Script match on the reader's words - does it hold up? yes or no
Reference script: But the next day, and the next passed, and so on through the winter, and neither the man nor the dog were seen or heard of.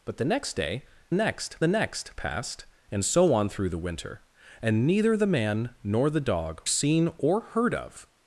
no